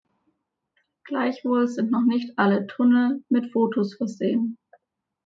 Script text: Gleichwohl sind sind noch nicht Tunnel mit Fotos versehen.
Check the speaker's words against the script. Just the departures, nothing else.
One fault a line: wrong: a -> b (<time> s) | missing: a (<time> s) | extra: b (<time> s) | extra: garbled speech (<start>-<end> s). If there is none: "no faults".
missing: sind (1.9 s)
extra: alle (2.4 s)